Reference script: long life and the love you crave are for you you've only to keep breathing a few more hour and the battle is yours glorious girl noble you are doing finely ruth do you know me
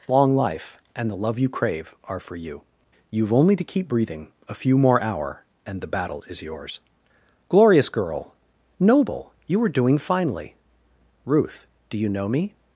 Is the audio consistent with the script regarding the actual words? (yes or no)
yes